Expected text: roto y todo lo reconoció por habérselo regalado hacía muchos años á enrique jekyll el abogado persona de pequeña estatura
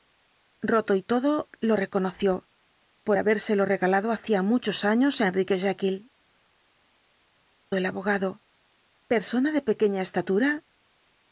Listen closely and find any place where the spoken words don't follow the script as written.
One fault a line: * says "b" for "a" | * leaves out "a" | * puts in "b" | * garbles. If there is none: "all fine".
all fine